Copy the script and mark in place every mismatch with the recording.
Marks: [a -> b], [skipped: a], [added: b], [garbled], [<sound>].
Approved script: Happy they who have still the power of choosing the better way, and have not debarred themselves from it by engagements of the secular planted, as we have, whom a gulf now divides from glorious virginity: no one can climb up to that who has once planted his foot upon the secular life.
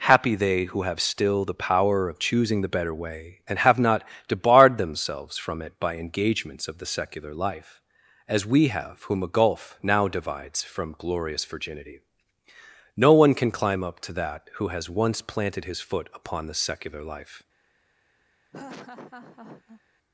Happy they who have still the power of choosing the better way, and have not debarred themselves from it by engagements of the secular [planted, -> life] as we have, whom a gulf now divides from glorious virginity: no one can climb up to that who has once planted his foot upon the secular life. [laugh]